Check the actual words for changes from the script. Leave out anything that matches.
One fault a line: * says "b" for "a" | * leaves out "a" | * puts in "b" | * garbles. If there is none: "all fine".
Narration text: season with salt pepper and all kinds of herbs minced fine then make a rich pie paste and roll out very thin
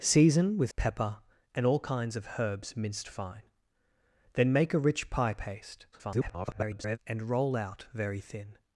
* leaves out "salt"
* garbles